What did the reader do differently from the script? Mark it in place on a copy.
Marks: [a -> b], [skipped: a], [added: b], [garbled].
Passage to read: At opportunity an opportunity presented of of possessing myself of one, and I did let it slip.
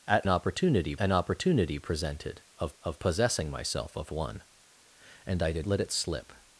At opportunity an opportunity presented of of possessing myself of one, and I did let it slip.